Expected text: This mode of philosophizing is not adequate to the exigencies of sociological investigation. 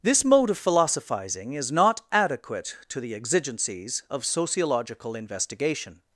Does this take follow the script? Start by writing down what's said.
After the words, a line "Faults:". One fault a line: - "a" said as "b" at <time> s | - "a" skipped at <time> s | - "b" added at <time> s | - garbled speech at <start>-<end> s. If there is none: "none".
This mode of philosophizing is not adequate to the exigencies of sociological investigation.
Faults:
none